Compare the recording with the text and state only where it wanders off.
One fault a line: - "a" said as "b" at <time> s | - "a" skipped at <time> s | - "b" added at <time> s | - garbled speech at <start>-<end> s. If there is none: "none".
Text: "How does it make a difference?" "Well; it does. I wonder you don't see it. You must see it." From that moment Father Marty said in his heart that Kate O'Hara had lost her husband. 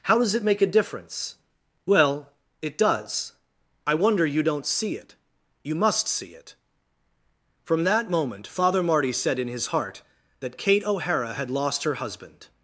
none